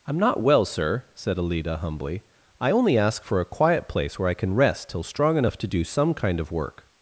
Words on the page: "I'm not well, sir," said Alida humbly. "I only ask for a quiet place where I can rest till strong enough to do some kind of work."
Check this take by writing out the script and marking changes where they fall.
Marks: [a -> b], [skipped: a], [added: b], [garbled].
"I'm not well, sir," said Alida humbly. "I only ask for a quiet place where I can rest till strong enough to do some kind of work."